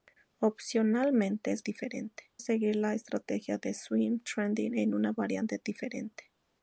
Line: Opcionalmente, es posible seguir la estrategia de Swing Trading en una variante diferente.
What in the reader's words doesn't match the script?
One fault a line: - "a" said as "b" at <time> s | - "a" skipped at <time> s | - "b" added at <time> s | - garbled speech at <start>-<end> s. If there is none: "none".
- "posible" said as "diferente" at 1.6 s